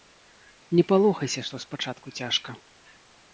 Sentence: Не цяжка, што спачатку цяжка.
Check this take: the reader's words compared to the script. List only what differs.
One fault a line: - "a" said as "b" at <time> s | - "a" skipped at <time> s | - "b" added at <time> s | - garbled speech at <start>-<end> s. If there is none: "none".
- "цяжка" said as "палохайся" at 0.9 s